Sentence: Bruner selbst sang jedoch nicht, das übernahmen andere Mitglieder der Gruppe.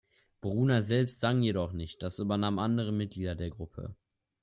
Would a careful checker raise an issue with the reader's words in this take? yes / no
no